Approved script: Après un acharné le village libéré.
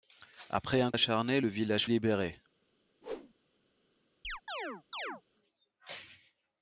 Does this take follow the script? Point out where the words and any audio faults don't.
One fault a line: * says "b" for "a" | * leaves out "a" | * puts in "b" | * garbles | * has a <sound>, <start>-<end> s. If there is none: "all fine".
* has a whoosh, 3.0-3.3 s
* has a chirp, 4.2-5.2 s